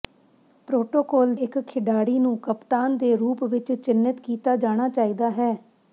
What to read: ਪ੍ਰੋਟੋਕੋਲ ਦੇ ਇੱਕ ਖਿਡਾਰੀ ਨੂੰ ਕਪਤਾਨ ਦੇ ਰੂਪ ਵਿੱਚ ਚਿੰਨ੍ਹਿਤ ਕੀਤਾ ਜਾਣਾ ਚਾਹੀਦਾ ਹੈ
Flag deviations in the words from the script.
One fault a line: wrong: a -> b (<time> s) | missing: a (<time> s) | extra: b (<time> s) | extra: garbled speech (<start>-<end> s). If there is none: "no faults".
missing: ਦੇ (1.3 s)